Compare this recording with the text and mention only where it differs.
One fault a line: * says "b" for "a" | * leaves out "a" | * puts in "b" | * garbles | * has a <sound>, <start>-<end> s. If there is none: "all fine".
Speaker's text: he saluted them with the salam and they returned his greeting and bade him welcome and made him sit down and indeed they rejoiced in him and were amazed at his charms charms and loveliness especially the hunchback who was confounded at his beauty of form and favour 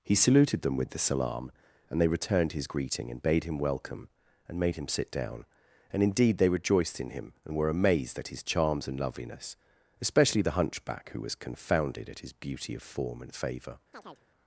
* leaves out "charms"
* has a chirp, 13.9-14.3 s